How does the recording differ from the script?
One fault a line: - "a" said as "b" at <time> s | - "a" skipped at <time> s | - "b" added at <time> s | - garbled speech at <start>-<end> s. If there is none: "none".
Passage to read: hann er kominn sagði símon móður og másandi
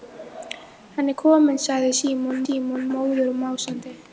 - "símon" added at 2.5 s